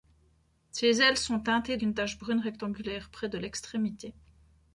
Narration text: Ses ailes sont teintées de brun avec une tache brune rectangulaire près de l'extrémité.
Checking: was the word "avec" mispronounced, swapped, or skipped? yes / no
yes